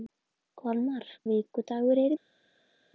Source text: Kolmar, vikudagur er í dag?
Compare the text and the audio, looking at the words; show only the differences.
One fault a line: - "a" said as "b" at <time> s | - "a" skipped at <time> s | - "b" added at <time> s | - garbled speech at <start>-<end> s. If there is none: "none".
none